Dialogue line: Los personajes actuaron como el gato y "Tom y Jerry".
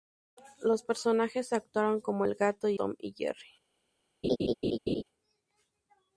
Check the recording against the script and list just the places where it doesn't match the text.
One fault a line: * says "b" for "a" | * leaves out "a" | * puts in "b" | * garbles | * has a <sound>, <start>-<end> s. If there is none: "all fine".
* has a laugh, 4.2-5.0 s